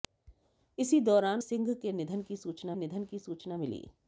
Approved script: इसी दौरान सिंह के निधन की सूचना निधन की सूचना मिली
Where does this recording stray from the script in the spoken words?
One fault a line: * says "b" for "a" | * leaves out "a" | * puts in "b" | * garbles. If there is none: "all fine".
all fine